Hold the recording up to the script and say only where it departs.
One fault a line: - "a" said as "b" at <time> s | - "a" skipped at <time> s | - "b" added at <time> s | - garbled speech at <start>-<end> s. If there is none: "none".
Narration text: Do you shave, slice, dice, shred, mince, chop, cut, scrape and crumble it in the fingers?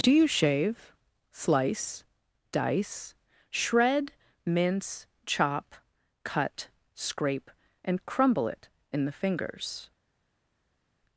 none